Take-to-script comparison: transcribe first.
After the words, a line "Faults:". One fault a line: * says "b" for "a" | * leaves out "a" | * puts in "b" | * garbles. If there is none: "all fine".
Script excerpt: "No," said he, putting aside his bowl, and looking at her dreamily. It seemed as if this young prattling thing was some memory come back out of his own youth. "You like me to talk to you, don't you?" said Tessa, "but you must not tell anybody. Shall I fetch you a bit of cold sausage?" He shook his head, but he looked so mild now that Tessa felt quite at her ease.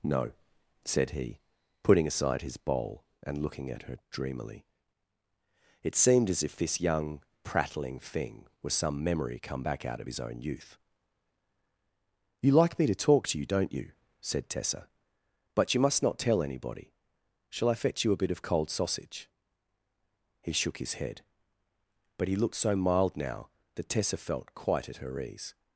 "No," said he, putting aside his bowl, and looking at her dreamily. It seemed as if this young prattling thing was some memory come back out of his own youth. "You like me to talk to you, don't you?" said Tessa, "but you must not tell anybody. Shall I fetch you a bit of cold sausage?" He shook his head, but he looked so mild now that Tessa felt quite at her ease.
Faults:
all fine